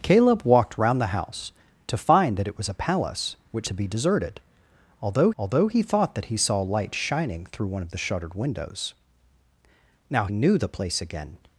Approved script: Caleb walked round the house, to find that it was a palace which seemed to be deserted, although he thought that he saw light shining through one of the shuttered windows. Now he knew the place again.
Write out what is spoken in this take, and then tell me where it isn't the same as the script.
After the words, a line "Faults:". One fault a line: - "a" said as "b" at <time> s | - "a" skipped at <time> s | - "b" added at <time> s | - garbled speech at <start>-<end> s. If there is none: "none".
Caleb walked round the house, to find that it was a palace which to be deserted, although although he thought that he saw light shining through one of the shuttered windows. Now knew the place again.
Faults:
- "seemed" skipped at 3.7 s
- "although" added at 5.4 s
- "he" skipped at 10.3 s